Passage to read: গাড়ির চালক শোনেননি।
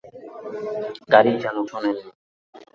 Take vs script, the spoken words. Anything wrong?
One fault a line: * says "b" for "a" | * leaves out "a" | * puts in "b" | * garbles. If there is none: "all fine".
all fine